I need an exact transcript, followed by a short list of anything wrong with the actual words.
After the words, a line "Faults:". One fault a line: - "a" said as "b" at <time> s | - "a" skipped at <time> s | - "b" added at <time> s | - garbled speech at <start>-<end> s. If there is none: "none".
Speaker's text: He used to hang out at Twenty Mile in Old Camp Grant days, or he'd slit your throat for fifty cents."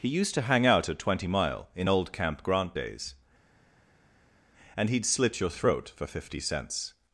He used to hang out at Twenty Mile in Old Camp Grant days, and he'd slit your throat for fifty cents."
Faults:
- "or" said as "and" at 4.8 s